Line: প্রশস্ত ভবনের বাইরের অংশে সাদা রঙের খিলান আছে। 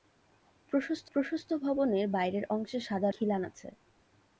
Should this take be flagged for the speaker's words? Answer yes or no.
yes